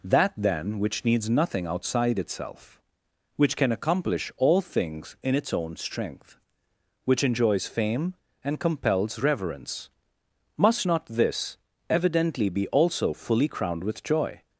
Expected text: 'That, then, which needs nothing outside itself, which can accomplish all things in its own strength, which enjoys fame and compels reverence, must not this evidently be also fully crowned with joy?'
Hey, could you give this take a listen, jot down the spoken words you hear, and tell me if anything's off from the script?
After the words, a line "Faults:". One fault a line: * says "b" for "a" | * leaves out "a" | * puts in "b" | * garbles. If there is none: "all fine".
'That, then, which needs nothing outside itself, which can accomplish all things in its own strength, which enjoys fame and compels reverence, must not this evidently be also fully crowned with joy?'
Faults:
all fine